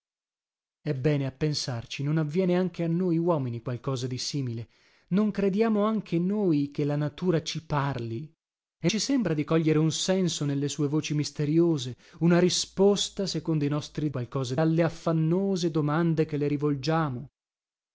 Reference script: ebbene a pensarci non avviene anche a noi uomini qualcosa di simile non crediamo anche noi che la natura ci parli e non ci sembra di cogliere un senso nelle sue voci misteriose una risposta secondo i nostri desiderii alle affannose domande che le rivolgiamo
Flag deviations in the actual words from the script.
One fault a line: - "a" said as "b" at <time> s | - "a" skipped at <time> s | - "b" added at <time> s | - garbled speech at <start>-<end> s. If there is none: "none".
- "non" skipped at 8.9 s
- "desiderii" said as "qualcosa" at 14.1 s